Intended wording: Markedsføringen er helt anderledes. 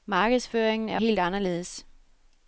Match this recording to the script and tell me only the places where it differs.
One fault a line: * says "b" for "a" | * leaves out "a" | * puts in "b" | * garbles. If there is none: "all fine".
all fine